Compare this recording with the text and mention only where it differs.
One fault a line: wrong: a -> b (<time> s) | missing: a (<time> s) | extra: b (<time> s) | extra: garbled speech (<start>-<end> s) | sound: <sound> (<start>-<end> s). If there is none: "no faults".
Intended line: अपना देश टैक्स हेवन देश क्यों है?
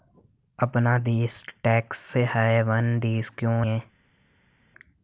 no faults